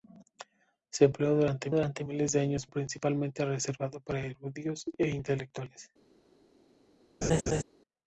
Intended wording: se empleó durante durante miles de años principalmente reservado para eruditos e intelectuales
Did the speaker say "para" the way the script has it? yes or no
yes